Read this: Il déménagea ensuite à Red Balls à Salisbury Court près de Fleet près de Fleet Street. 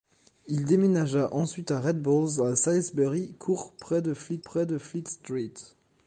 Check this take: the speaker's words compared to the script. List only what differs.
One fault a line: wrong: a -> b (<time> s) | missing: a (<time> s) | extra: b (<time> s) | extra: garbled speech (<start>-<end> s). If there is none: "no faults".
no faults